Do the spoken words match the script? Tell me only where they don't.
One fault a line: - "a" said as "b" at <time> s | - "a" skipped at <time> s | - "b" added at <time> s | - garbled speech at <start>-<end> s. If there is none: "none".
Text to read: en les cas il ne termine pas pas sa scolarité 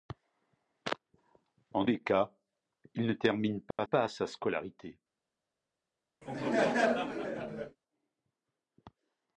none